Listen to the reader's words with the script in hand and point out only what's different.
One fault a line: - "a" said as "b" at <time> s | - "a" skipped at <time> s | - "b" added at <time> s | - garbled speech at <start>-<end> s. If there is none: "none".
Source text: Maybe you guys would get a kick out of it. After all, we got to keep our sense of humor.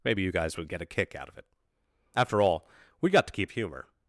- "our sense of" skipped at 3.5 s